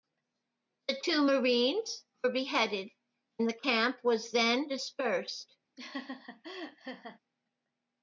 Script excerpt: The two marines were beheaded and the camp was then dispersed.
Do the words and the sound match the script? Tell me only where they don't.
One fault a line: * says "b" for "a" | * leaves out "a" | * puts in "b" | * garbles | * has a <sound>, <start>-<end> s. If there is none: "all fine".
* has a laugh, 5.8-7.2 s